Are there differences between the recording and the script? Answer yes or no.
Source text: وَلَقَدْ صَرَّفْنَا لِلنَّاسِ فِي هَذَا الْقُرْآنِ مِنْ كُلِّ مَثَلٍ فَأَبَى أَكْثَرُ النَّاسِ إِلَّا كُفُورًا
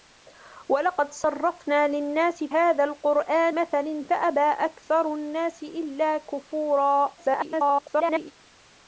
yes